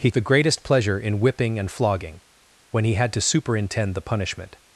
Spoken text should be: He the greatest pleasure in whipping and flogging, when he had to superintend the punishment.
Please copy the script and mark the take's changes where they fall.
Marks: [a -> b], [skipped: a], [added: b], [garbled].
He the greatest pleasure in whipping and flogging, when he had to superintend the punishment.